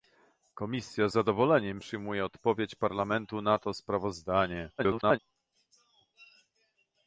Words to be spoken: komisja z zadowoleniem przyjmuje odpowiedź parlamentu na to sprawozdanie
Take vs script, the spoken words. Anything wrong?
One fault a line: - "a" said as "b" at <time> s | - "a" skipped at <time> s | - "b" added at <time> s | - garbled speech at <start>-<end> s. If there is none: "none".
- garbled speech at 4.8-5.2 s